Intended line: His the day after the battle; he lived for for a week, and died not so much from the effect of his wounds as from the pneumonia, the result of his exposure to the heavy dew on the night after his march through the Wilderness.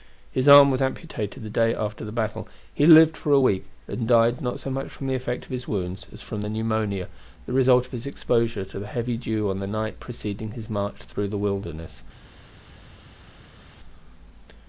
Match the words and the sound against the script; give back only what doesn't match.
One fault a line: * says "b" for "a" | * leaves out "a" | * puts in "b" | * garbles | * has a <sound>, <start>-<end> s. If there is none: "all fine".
* puts in "arm was amputated"
* leaves out "for"
* says "preceding" for "after"